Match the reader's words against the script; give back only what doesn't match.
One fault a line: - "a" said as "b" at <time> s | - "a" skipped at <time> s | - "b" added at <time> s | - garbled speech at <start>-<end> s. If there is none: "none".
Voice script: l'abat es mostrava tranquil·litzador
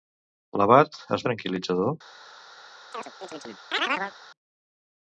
- "mostrava" skipped at 1.3 s